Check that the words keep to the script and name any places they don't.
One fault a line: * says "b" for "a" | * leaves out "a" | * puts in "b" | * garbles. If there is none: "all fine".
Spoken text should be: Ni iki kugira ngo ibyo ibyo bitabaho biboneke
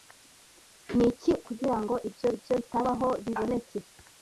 all fine